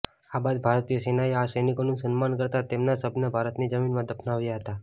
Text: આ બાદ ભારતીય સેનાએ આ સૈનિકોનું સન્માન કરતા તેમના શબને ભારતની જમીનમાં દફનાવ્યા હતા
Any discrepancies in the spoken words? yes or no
no